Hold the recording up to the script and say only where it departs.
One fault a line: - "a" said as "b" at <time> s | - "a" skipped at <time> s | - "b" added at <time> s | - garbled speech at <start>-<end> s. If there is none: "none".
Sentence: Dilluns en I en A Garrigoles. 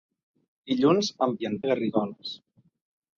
none